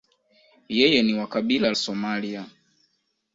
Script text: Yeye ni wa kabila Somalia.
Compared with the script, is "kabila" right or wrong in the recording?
right